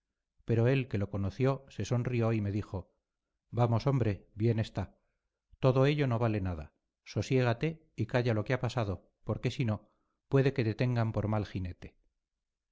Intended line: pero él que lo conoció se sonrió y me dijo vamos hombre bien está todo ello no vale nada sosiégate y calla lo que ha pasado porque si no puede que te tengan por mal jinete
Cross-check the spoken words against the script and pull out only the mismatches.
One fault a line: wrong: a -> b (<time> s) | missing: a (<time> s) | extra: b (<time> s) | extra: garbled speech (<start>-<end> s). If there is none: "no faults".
no faults